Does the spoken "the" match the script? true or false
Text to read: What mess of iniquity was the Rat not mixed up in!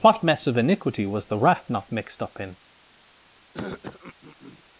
true